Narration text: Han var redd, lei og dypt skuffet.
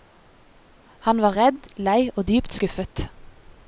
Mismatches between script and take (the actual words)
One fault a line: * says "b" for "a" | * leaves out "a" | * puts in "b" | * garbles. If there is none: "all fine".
all fine